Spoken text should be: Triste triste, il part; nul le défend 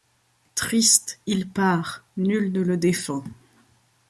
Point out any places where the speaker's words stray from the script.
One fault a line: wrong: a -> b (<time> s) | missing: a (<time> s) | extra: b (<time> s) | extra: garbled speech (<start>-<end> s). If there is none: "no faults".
missing: triste (1.2 s)
extra: ne (2.5 s)